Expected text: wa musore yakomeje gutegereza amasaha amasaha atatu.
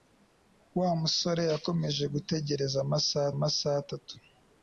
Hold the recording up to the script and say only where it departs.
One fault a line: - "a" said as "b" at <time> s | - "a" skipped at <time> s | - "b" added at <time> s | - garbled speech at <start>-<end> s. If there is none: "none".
none